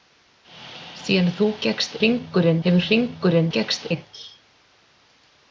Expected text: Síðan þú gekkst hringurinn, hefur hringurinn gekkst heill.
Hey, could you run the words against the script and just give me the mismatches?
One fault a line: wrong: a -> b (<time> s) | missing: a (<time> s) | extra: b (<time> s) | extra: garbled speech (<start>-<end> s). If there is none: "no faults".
no faults